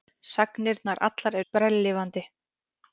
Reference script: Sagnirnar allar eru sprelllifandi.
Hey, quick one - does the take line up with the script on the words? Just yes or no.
no